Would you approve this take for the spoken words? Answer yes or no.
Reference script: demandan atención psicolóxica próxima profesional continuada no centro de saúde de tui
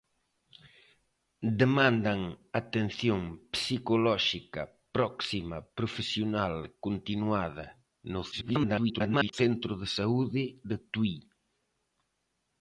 no